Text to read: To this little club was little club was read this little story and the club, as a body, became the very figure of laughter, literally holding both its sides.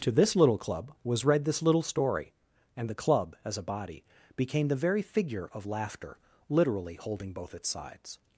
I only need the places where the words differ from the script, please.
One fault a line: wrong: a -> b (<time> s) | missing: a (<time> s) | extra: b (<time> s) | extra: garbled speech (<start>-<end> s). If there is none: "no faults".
missing: little club was (1.2 s)